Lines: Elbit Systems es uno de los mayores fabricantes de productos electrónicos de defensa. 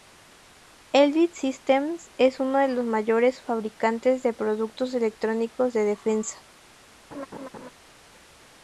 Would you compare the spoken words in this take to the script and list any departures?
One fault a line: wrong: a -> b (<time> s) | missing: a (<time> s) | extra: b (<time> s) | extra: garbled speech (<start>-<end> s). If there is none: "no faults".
no faults